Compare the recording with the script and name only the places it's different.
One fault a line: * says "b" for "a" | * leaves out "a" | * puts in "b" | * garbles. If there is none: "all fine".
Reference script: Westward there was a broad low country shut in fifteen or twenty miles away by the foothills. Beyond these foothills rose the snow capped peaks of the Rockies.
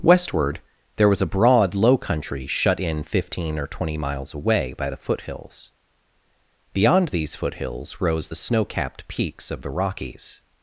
all fine